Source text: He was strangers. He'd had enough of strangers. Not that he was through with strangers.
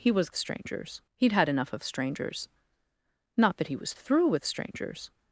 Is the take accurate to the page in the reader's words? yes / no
yes